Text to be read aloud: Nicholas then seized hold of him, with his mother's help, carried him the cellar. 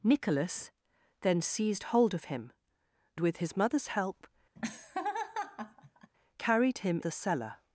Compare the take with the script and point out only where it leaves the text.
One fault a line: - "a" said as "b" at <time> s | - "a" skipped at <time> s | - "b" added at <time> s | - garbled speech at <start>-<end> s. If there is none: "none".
none